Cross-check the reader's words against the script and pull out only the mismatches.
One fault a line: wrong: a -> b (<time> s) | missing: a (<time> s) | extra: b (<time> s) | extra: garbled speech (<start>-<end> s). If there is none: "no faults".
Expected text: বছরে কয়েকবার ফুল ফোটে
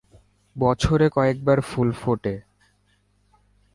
no faults